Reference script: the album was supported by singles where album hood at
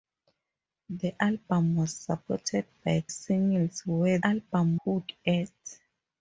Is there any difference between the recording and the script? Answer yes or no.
no